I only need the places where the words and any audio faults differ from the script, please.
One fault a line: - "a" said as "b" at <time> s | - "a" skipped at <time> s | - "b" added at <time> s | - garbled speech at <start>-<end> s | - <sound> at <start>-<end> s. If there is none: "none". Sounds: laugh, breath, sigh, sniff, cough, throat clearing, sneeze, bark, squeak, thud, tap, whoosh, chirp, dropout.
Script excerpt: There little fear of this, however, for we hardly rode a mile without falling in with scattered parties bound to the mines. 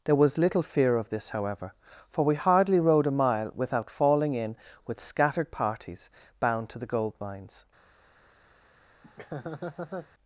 - "was" added at 0.1 s
- "gold" added at 6.9 s
- laugh at 9.0-10.1 s